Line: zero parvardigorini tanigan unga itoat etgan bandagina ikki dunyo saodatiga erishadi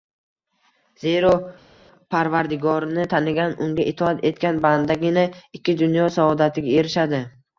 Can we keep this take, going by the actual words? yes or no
yes